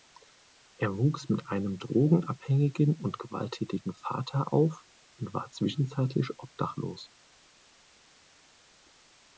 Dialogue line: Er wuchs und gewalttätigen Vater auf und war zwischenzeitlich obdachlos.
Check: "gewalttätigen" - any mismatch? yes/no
no